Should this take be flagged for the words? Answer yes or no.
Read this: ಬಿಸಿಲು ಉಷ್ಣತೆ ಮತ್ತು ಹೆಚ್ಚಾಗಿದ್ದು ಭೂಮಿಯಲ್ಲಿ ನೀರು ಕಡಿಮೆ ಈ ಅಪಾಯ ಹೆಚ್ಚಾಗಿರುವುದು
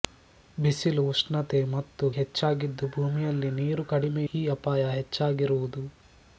no